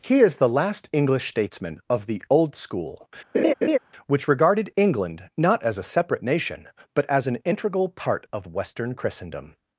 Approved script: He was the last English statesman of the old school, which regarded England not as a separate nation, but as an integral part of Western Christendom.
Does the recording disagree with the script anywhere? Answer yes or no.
yes